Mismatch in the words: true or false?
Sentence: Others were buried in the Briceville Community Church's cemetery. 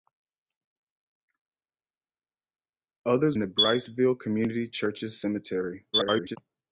true